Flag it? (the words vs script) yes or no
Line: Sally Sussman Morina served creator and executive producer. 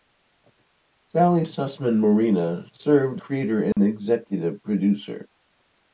no